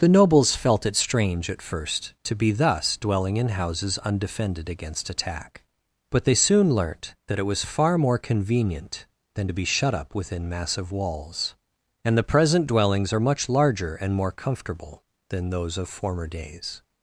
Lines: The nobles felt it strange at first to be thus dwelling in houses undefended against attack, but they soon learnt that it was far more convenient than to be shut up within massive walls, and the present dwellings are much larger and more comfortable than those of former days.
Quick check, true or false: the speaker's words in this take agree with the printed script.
true